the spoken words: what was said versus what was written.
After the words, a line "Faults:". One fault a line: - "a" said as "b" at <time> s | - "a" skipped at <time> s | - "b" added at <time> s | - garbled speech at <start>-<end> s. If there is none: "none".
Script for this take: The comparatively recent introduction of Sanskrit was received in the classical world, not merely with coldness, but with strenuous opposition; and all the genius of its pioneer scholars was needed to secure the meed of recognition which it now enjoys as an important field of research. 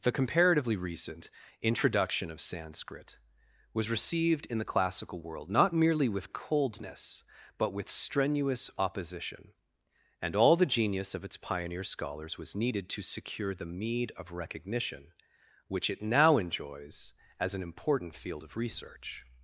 The comparatively recent introduction of Sanskrit was received in the classical world, not merely with coldness, but with strenuous opposition; and all the genius of its pioneer scholars was needed to secure the meed of recognition which it now enjoys as an important field of research.
Faults:
none